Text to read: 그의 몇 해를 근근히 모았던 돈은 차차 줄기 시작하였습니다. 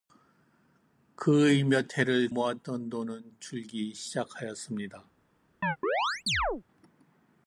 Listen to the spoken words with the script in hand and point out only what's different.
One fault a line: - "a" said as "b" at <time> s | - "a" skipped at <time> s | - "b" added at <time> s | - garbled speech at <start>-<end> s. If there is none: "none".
- "근근히" skipped at 2.3 s
- "차차" skipped at 3.4 s